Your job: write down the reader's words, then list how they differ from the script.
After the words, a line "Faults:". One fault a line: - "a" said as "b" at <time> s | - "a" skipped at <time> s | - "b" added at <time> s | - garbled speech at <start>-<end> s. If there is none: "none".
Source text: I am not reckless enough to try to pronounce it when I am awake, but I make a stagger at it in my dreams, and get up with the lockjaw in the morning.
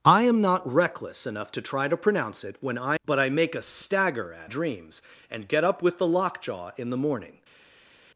I am not reckless enough to try to pronounce it when I but I make a stagger at dreams, and get up with the lockjaw in the morning.
Faults:
- "am awake" skipped at 3.0 s
- "it in my" skipped at 4.5 s